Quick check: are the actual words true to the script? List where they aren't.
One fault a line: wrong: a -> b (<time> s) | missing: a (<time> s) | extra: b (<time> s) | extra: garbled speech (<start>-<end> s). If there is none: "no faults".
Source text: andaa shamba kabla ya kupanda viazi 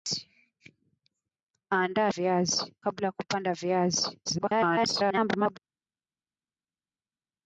wrong: shamba -> viazi (2.1 s)
extra: garbled speech (4.3-5.6 s)